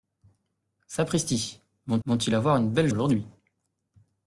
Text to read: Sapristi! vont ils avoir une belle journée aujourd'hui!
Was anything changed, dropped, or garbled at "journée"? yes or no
yes